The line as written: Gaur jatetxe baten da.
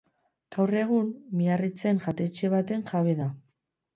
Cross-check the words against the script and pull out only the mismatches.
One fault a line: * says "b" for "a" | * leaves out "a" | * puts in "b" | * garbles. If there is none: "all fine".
* puts in "egun Miarritzen"
* puts in "jabe"